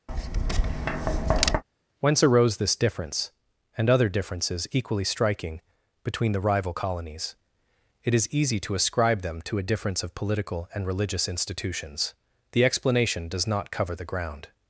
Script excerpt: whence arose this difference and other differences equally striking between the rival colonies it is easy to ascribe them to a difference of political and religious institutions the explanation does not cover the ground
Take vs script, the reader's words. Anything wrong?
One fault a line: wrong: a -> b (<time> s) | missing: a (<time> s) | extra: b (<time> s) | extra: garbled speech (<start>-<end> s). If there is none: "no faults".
no faults